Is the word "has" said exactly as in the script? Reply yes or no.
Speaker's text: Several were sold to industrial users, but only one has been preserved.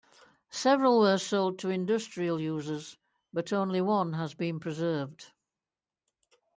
yes